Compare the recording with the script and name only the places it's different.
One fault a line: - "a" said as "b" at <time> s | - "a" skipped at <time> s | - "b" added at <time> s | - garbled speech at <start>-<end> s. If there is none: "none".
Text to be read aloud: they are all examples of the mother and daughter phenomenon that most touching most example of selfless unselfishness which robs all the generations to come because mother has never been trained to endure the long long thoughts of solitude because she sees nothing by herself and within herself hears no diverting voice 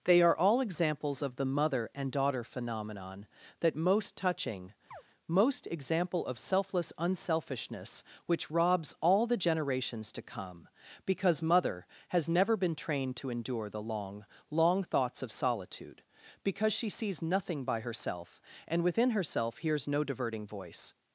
none